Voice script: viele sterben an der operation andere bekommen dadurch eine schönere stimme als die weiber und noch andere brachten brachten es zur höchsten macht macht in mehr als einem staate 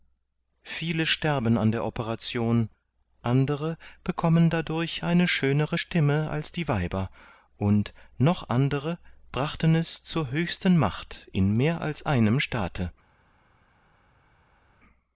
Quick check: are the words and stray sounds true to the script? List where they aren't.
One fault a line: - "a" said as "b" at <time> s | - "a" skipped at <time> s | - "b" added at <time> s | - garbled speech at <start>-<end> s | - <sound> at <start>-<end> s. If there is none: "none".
- "brachten" skipped at 9.7 s
- "macht" skipped at 11.3 s